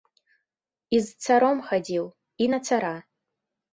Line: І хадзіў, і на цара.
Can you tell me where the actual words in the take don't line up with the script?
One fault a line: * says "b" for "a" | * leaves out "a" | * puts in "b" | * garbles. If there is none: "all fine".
* puts in "з царом"